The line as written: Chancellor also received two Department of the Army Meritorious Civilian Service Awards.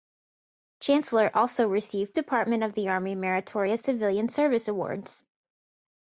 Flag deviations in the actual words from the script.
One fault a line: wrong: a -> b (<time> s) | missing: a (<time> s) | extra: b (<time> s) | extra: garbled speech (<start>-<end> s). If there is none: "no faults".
missing: two (2.2 s)